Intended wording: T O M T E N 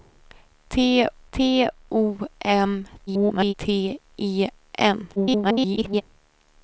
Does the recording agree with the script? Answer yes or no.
no